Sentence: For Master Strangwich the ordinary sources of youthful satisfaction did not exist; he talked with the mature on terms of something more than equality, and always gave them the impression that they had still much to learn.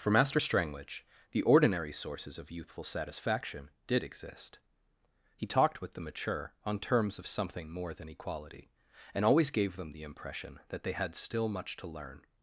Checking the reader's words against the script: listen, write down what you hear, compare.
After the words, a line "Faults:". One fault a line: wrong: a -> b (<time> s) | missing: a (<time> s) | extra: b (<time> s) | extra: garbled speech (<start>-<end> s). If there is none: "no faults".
For Master Strangwich the ordinary sources of youthful satisfaction did exist; he talked with the mature on terms of something more than equality, and always gave them the impression that they had still much to learn.
Faults:
missing: not (4.0 s)